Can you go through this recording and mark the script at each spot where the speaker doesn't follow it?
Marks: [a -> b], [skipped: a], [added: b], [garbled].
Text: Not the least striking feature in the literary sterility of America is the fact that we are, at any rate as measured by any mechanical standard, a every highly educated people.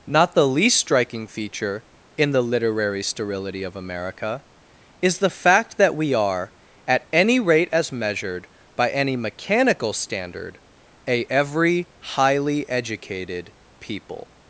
Not the least striking feature in the literary sterility of America is the fact that we are, at any rate as measured by any mechanical standard, a every highly educated people.